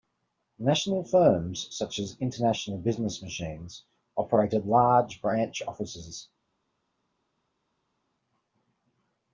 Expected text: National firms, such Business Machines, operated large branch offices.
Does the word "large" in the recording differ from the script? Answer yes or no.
no